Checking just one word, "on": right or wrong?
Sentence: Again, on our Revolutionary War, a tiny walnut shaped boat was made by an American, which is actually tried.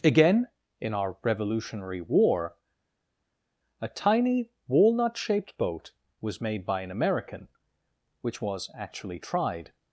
wrong